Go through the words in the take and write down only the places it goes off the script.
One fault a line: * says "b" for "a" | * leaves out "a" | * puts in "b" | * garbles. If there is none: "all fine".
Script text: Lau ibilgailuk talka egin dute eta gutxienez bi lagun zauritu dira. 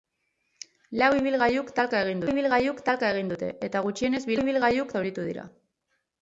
* puts in "ibilgailuk talka egin"
* says "ibilgailuk" for "lagun"